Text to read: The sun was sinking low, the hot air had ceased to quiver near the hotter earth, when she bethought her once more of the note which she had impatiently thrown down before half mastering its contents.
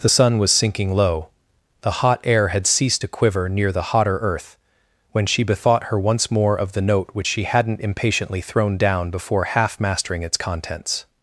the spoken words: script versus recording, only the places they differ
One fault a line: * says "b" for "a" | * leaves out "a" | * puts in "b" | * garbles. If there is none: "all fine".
* says "hadn't" for "had"